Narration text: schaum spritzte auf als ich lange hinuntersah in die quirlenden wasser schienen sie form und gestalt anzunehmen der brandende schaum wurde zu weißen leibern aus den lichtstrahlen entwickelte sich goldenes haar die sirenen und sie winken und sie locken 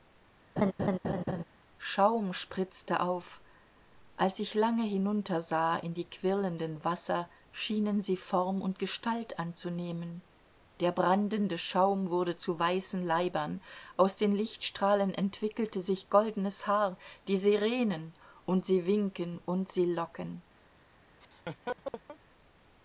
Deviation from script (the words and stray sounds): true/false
true